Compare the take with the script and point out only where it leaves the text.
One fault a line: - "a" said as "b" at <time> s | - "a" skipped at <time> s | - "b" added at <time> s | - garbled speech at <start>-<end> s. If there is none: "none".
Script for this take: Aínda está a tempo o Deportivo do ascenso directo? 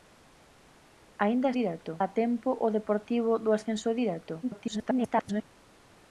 - "está" said as "directo" at 1.6 s
- garbled speech at 4.4-5.4 s